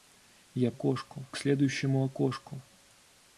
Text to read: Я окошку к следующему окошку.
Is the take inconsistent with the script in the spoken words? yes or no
no